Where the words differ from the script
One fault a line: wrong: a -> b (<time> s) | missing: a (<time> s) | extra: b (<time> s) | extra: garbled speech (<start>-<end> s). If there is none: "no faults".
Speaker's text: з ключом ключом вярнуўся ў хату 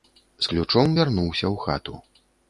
missing: ключом (0.9 s)